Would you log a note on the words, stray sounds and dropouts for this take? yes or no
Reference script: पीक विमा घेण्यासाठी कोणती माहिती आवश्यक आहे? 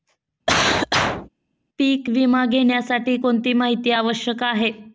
yes